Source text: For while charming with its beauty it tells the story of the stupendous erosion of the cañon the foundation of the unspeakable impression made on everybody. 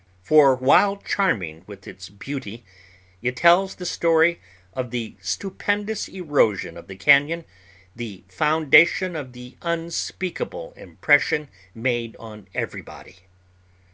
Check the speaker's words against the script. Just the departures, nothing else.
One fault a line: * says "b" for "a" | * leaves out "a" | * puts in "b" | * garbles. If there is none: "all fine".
all fine